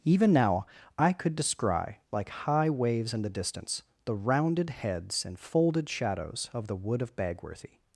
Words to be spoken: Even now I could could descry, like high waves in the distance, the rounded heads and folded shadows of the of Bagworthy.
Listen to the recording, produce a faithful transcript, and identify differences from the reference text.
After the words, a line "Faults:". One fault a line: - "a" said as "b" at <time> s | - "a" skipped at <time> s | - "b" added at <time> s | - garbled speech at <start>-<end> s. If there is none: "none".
Even now I could descry, like high waves in the distance, the rounded heads and folded shadows of the wood of Bagworthy.
Faults:
- "could" skipped at 1.4 s
- "wood" added at 6.8 s